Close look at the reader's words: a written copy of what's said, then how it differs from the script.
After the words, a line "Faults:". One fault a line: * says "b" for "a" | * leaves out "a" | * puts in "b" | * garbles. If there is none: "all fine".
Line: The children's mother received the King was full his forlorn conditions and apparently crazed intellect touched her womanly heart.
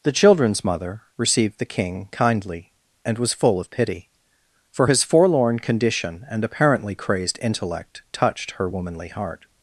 The children's mother received the King kindly, and was full of pity; for his forlorn condition and apparently crazed intellect touched her womanly heart.
Faults:
* puts in "kindly and"
* puts in "of pity for"
* says "condition" for "conditions"